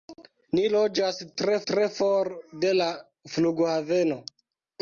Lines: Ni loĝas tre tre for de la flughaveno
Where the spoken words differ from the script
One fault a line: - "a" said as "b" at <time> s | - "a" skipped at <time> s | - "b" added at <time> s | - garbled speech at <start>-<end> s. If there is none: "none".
none